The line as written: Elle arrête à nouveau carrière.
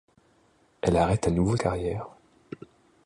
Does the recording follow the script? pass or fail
pass